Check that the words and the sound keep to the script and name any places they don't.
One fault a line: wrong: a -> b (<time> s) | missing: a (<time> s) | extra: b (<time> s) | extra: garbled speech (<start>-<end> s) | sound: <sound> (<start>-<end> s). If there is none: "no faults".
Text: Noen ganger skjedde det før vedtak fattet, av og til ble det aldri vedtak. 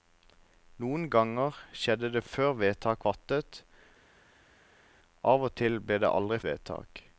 no faults